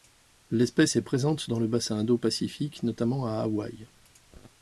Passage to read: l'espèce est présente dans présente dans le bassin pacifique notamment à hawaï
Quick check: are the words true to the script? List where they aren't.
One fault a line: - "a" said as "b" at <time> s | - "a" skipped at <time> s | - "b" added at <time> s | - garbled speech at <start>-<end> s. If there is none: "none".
- "présente dans" skipped at 1.6 s
- "indo" added at 2.0 s